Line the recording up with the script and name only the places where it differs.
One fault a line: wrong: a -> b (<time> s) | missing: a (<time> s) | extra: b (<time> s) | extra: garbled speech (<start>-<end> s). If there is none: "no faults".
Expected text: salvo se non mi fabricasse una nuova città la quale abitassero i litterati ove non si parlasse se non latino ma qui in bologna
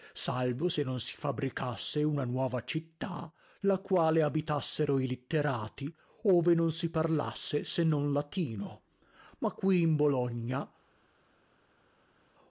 wrong: mi -> si (1.0 s)